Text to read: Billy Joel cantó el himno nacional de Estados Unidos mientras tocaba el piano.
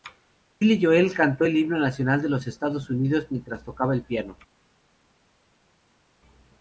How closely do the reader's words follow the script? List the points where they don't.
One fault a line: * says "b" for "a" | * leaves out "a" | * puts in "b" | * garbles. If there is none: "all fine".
* puts in "los"